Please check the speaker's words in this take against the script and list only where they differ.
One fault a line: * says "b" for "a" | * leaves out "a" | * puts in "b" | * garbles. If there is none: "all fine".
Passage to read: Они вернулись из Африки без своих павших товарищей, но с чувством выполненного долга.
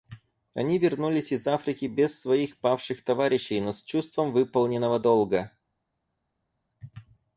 all fine